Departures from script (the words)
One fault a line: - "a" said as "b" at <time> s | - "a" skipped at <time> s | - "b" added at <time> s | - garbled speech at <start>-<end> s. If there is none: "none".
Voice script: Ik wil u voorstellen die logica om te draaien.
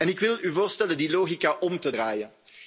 none